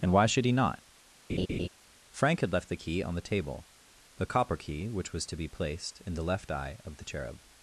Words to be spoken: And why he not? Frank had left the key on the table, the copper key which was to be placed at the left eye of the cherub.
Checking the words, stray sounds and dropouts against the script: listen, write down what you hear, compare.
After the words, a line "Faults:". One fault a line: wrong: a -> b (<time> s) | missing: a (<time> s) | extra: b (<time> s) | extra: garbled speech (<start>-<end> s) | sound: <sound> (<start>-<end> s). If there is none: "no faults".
And why should he not? Frank had left the key on the table, the copper key which was to be placed in the left eye of the cherub.
Faults:
extra: should (0.2 s)
sound: laugh (1.3-1.7 s)
wrong: at -> in (6.0 s)